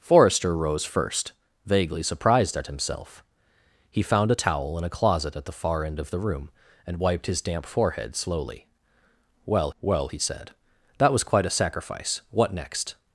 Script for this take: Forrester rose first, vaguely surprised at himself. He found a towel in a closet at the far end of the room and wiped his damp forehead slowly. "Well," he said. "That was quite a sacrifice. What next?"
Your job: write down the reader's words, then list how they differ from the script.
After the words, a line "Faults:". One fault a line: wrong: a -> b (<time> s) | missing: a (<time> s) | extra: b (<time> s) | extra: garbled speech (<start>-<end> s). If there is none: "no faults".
Forrester rose first, vaguely surprised at himself. He found a towel in a closet at the far end of the room and wiped his damp forehead slowly. "Well well," he said. "That was quite a sacrifice. What next?"
Faults:
extra: well (9.8 s)